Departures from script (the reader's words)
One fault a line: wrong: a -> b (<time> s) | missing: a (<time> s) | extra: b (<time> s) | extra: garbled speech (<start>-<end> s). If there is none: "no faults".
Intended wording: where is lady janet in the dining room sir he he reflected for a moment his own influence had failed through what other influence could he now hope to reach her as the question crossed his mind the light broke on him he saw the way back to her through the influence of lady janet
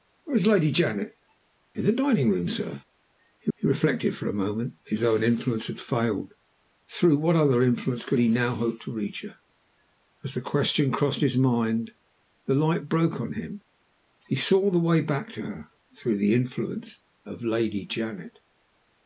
no faults